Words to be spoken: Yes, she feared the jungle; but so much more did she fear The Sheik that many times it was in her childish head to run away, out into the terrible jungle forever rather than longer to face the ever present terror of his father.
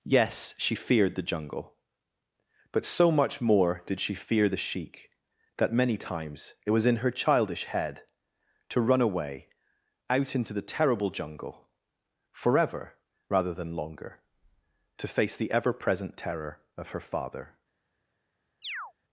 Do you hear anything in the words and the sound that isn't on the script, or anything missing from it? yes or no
yes